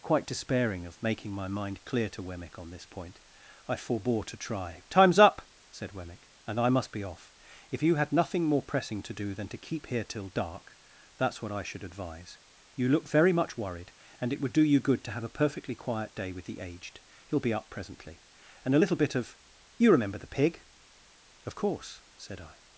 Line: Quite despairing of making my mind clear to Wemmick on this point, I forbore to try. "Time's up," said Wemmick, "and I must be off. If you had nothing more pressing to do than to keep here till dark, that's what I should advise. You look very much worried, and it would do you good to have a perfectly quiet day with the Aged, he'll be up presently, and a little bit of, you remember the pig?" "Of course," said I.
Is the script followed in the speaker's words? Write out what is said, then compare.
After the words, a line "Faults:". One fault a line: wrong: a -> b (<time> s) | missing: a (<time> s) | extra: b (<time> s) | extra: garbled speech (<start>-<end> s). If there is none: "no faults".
Quite despairing of making my mind clear to Wemmick on this point, I forbore to try. "Time's up," said Wemmick, "and I must be off. If you had nothing more pressing to do than to keep here till dark, that's what I should advise. You look very much worried, and it would do you good to have a perfectly quiet day with the Aged, he'll be up presently, and a little bit of, you remember the pig?" "Of course," said I.
Faults:
no faults